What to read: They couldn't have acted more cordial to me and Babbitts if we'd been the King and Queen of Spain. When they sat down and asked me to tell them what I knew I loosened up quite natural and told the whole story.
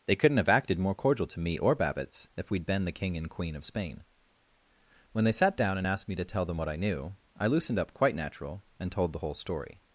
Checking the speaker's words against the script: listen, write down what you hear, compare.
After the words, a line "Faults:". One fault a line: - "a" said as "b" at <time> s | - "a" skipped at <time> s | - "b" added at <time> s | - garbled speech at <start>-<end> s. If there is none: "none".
They couldn't have acted more cordial to me or Babbitts if we'd been the King and Queen of Spain. When they sat down and asked me to tell them what I knew I loosened up quite natural and told the whole story.
Faults:
- "and" said as "or" at 1.6 s